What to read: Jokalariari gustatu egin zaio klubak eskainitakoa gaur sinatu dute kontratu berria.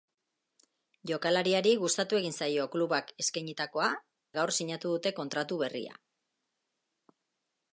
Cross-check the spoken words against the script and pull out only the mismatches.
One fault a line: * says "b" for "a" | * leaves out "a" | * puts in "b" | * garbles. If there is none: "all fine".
all fine